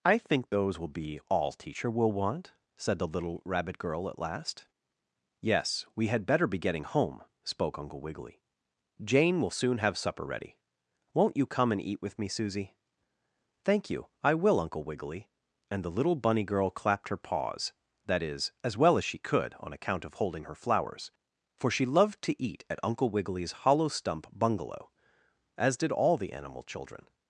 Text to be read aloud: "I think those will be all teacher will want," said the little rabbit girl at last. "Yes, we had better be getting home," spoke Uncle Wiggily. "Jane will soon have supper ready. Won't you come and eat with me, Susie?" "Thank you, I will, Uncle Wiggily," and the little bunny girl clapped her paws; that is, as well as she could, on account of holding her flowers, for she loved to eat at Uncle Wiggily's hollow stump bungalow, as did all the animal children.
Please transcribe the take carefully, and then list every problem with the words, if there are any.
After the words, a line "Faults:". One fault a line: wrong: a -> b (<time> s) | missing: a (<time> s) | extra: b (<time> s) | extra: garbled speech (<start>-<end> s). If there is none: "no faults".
"I think those will be all teacher will want," said the little rabbit girl at last. "Yes, we had better be getting home," spoke Uncle Wiggily. "Jane will soon have supper ready. Won't you come and eat with me, Susie?" "Thank you, I will, Uncle Wiggily," and the little bunny girl clapped her paws; that is, as well as she could, on account of holding her flowers, for she loved to eat at Uncle Wiggily's hollow stump bungalow, as did all the animal children.
Faults:
no faults